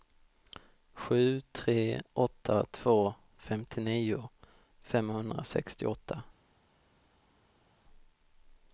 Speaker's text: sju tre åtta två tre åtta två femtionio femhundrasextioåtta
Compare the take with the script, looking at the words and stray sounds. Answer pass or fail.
fail